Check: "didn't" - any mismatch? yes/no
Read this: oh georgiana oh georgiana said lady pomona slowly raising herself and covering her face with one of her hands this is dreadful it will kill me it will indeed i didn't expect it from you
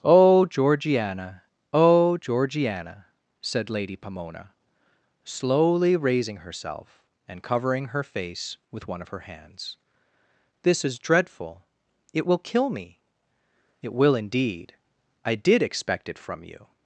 yes